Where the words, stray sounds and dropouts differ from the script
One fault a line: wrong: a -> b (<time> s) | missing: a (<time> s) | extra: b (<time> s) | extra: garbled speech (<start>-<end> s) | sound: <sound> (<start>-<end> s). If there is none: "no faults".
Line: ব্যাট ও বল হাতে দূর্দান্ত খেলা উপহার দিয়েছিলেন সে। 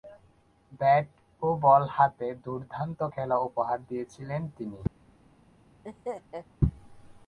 wrong: সে -> তিনি (4.6 s)
sound: laugh (5.8-6.5 s)